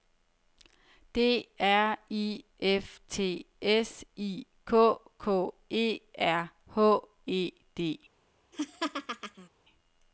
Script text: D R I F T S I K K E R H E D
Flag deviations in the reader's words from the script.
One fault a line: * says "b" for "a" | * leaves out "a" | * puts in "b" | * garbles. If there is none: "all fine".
all fine